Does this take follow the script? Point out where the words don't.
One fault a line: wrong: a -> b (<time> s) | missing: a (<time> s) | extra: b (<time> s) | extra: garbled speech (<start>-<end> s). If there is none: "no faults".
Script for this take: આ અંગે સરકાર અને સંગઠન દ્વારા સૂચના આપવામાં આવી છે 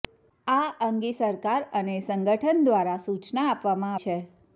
missing: આવી (3.9 s)